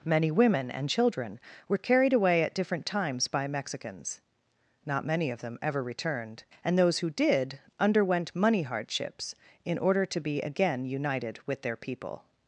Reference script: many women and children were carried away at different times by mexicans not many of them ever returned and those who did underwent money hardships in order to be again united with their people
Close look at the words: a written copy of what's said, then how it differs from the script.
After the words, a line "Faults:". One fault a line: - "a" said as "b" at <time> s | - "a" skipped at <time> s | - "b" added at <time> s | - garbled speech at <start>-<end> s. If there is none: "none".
many women and children were carried away at different times by mexicans not many of them ever returned and those who did underwent money hardships in order to be again united with their people
Faults:
none